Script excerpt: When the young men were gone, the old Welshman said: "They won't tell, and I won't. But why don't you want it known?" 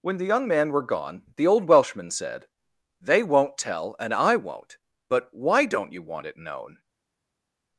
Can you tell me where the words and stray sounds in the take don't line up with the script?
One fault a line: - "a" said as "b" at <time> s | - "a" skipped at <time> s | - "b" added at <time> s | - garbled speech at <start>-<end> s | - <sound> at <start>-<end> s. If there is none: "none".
- "men" said as "man" at 0.5 s